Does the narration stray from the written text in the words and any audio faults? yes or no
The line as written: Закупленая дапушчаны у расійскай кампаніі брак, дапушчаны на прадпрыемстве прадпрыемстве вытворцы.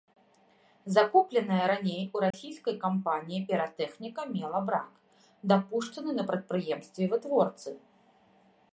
yes